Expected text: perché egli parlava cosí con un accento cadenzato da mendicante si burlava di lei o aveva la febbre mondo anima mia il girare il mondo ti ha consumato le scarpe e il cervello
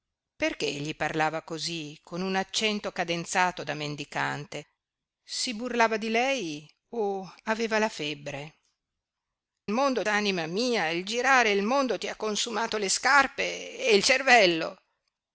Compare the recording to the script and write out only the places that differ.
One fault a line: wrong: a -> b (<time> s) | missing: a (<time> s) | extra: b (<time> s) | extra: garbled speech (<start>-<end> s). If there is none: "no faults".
no faults